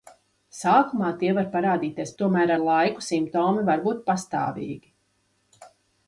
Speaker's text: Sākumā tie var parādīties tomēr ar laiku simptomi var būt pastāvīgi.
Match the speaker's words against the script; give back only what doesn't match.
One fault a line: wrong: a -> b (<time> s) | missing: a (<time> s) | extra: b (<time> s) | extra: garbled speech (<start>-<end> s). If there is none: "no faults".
no faults